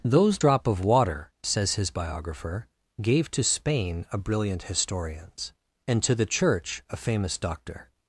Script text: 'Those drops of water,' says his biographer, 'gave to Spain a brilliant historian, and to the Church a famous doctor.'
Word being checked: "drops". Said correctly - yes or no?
no